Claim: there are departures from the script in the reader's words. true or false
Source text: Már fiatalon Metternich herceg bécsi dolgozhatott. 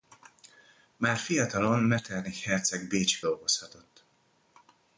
false